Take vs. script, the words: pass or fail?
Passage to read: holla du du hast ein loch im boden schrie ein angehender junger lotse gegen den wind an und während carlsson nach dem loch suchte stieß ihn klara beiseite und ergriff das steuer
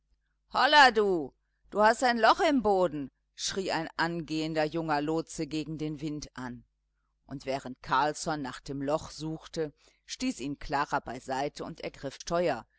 fail